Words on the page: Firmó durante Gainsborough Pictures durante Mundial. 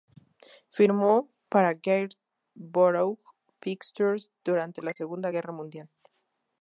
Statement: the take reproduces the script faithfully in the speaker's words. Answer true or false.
false